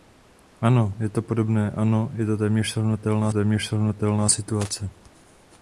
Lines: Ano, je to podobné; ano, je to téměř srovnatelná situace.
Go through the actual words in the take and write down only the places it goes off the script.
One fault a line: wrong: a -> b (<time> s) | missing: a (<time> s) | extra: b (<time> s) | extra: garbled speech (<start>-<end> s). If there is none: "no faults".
extra: téměř srovnatelná (3.3 s)